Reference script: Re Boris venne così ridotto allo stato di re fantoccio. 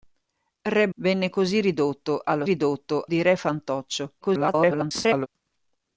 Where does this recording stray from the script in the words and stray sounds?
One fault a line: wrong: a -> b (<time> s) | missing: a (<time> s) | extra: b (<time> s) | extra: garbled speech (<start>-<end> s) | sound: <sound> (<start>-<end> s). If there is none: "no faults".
missing: Boris (0.9 s)
wrong: stato -> ridotto (2.4 s)
extra: garbled speech (4.2-5.3 s)